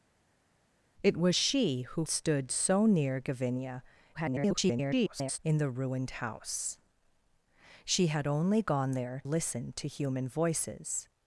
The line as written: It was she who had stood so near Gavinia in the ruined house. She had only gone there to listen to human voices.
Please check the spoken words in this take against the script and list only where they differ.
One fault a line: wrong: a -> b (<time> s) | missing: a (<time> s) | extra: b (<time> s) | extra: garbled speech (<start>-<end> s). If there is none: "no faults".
missing: had (2.1 s)
extra: garbled speech (4.1-5.4 s)
missing: to (9.2 s)